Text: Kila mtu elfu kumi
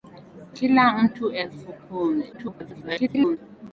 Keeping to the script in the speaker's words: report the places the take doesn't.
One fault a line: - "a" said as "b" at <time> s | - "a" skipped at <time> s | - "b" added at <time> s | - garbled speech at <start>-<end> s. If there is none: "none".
- garbled speech at 2.3-3.4 s